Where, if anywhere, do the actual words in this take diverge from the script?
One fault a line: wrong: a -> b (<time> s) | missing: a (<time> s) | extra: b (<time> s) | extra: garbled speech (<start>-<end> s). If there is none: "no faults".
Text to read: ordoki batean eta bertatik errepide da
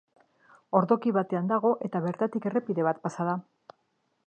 extra: dago (1.5 s)
extra: bat pasa (2.9 s)